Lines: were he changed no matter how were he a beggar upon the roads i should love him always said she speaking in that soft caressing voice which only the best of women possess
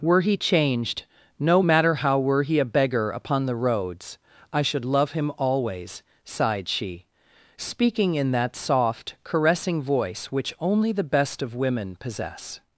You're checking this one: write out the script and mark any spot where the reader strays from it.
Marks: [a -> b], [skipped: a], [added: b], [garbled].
were he changed no matter how were he a beggar upon the roads i should love him always [said -> sighed] she speaking in that soft caressing voice which only the best of women possess